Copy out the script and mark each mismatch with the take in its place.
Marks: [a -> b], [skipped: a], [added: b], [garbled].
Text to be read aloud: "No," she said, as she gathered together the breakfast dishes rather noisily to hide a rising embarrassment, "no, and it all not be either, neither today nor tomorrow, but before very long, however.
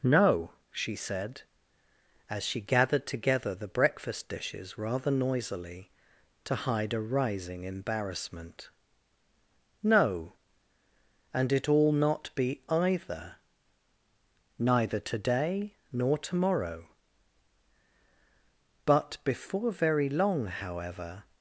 "No," she said, as she gathered together the breakfast dishes rather noisily to hide a rising embarrassment, "no, and it all not be either, neither today nor tomorrow, but before very long, however.